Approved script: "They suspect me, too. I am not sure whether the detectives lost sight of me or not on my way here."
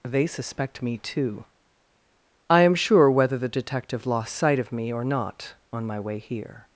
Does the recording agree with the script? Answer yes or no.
no